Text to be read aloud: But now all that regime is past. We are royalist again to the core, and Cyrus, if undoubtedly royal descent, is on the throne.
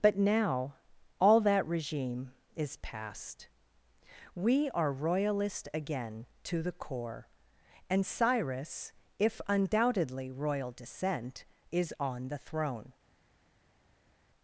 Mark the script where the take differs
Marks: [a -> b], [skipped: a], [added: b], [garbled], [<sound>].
But now all that regime is past. We are royalist again to the core, and Cyrus, if undoubtedly royal descent, is on the throne.